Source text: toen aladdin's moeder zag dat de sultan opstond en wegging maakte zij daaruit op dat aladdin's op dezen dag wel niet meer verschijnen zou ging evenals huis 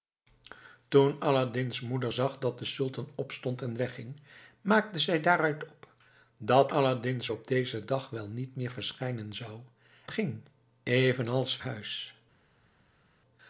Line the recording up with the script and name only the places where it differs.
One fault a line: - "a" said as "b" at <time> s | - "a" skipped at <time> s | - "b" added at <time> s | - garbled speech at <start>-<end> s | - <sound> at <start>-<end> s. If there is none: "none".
none